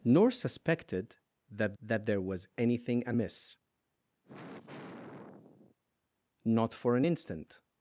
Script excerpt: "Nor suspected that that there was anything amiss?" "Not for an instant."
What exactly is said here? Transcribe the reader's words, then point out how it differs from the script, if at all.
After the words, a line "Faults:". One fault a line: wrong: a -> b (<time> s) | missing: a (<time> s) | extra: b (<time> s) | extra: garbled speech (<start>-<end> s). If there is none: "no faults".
"Nor suspected that that there was anything amiss?" "Not for an instant."
Faults:
no faults